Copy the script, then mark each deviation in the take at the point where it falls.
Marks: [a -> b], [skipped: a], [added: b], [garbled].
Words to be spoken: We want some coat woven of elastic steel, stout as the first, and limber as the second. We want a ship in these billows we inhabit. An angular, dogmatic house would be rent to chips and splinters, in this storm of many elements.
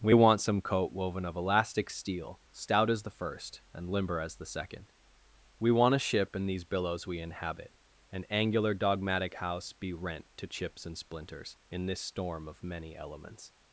We want some coat woven of elastic steel, stout as the first, and limber as the second. We want a ship in these billows we inhabit. An angular, dogmatic house [skipped: would] be rent to chips and splinters, in this storm of many elements.